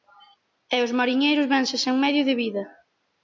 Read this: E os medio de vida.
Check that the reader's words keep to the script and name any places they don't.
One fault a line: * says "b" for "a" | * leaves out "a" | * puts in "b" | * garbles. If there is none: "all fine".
* puts in "mariñeiros vense sen"